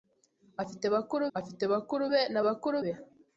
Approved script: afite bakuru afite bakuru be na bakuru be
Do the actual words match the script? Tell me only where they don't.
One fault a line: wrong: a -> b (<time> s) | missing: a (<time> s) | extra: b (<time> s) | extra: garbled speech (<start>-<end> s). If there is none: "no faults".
no faults